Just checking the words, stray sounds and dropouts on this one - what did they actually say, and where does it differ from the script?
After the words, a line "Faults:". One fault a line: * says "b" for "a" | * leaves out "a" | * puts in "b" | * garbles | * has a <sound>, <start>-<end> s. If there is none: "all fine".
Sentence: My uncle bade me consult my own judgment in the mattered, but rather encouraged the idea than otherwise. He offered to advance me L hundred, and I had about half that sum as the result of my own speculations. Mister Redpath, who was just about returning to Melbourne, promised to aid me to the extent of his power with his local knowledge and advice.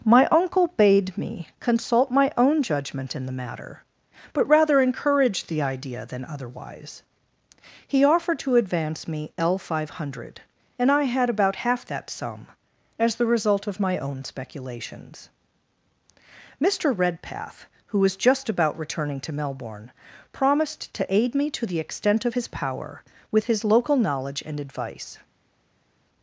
My uncle bade me consult my own judgment in the matter, but rather encouraged the idea than otherwise. He offered to advance me L five hundred, and I had about half that sum as the result of my own speculations. Mister Redpath, who was just about returning to Melbourne, promised to aid me to the extent of his power with his local knowledge and advice.
Faults:
* says "matter" for "mattered"
* puts in "five"